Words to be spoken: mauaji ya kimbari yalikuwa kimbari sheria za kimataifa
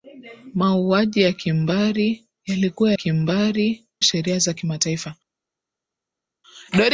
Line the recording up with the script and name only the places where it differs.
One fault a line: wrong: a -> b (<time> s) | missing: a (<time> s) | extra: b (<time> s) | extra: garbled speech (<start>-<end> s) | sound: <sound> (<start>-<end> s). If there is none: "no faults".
no faults